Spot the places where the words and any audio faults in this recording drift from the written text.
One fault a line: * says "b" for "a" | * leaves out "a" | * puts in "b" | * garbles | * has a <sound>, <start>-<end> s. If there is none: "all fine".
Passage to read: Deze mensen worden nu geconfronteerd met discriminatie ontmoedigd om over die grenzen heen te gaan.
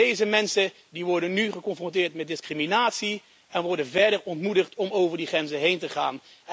* puts in "en worden verder"